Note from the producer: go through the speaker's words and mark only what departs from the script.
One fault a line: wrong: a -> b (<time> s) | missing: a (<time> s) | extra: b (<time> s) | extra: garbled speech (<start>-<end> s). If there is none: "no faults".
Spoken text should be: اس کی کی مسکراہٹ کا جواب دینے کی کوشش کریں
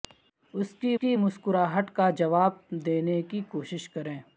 no faults